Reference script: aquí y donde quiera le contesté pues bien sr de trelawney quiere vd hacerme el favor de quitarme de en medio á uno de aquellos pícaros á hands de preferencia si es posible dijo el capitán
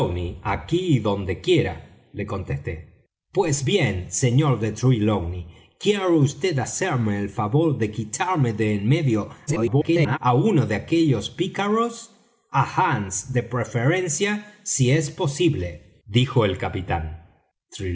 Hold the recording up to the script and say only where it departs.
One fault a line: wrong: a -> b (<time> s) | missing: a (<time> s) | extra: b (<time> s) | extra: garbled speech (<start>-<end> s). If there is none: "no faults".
extra: garbled speech (9.5-10.2 s)